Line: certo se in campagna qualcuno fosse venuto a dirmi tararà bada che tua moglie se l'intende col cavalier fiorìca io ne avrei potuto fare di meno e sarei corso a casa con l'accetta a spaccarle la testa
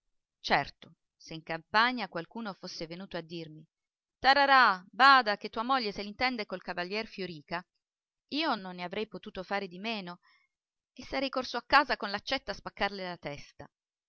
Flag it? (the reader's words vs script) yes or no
yes